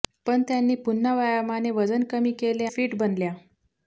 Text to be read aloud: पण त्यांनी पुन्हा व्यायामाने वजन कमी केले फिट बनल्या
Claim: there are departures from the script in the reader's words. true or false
false